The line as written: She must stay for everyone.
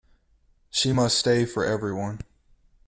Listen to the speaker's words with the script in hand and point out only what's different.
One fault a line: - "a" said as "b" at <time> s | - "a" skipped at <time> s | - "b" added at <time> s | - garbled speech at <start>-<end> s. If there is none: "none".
none